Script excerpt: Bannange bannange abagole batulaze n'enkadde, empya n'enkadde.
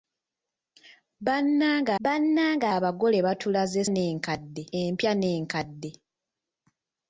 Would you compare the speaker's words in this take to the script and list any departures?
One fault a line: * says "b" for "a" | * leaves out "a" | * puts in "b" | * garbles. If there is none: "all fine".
all fine